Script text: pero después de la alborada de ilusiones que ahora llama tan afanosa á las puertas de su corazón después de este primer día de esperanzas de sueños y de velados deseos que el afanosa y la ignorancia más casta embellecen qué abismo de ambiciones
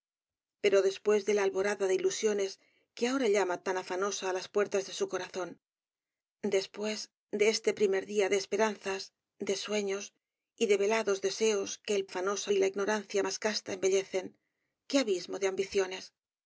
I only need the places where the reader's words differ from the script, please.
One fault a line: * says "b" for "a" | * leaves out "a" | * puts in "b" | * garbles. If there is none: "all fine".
all fine